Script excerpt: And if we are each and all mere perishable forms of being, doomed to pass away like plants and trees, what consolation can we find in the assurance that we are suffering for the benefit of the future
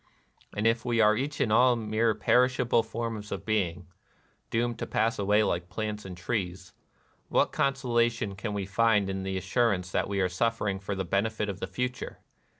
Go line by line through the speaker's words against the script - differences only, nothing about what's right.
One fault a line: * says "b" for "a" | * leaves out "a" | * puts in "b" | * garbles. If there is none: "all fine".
all fine